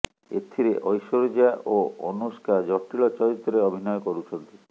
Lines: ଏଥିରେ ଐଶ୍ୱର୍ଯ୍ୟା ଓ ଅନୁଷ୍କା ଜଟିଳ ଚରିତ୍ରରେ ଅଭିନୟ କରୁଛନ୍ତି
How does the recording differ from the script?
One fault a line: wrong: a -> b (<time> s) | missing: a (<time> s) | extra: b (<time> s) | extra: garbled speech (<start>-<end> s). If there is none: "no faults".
no faults